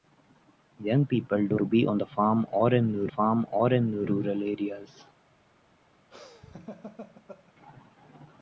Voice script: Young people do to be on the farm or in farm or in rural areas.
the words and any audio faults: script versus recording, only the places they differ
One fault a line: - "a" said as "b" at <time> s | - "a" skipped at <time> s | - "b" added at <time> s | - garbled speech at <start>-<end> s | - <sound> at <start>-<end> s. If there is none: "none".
- laugh at 6.1-7.5 s